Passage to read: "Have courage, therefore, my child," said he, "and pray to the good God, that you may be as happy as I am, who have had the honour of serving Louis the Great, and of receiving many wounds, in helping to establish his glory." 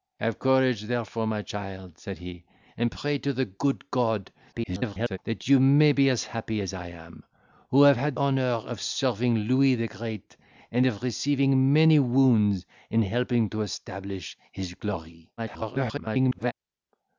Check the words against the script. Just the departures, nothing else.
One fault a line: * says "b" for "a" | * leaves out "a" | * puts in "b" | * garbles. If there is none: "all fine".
* garbles
* leaves out "the"
* garbles